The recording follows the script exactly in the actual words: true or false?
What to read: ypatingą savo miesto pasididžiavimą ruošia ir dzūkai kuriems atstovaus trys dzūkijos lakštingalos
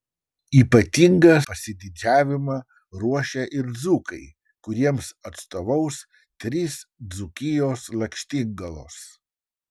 false